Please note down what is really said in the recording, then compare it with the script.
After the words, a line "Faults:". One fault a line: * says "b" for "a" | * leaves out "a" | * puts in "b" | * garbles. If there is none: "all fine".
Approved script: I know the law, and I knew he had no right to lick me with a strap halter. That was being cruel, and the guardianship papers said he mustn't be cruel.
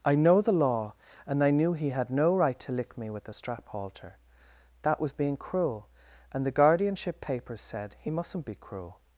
I know the law, and I knew he had no right to lick me with a strap halter. That was being cruel, and the guardianship papers said he mustn't be cruel.
Faults:
all fine